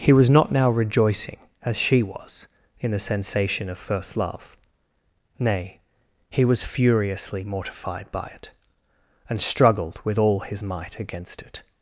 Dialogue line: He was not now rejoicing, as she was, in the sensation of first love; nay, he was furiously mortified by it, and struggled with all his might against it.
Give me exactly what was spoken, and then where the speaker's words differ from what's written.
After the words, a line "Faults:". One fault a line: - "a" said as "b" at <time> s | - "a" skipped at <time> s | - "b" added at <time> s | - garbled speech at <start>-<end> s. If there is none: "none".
He was not now rejoicing, as she was, in the sensation of first love; nay, he was furiously mortified by it, and struggled with all his might against it.
Faults:
none